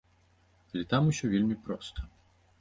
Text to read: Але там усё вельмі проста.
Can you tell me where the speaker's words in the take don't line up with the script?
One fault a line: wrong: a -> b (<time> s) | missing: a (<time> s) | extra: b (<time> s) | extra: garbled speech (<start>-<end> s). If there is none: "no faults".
no faults